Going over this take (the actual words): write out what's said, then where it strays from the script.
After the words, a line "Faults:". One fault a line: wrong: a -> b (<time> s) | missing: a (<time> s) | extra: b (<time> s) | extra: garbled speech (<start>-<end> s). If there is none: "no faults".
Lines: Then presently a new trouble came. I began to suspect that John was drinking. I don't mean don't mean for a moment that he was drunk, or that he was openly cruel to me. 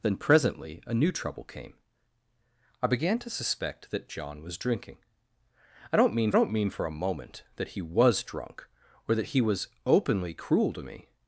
Then presently a new trouble came. I began to suspect that John was drinking. I don't mean don't mean for a moment that he was drunk, or that he was openly cruel to me.
Faults:
no faults